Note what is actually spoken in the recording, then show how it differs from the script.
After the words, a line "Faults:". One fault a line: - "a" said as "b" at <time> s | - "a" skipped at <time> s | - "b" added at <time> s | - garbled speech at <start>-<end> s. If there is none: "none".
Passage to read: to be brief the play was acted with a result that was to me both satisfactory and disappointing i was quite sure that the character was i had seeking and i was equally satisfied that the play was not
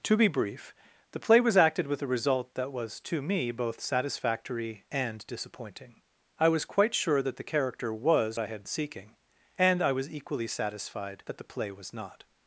to be brief the play was acted with a result that was to me both satisfactory and disappointing i was quite sure that the character was i had seeking and i was equally satisfied that the play was not
Faults:
none